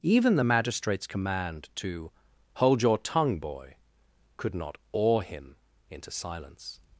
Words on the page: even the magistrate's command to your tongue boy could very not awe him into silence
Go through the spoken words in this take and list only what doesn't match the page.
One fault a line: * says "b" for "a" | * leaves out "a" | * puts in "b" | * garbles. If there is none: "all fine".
* puts in "hold"
* leaves out "very"